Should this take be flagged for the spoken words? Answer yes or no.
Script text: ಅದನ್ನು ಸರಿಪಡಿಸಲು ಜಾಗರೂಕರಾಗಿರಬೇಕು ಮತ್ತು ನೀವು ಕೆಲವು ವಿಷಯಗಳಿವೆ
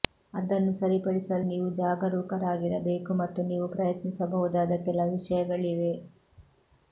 yes